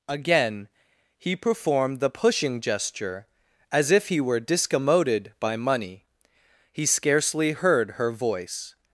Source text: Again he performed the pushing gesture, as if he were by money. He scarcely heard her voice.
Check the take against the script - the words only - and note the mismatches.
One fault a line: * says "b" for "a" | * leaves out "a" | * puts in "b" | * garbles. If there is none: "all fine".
* puts in "discommoded"